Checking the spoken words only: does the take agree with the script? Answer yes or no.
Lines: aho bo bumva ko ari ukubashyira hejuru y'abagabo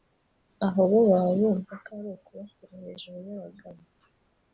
no